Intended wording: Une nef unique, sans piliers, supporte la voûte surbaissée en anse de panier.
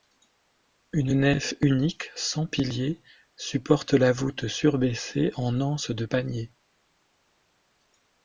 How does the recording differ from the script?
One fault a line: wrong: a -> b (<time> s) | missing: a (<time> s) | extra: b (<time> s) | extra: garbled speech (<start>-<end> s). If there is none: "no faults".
no faults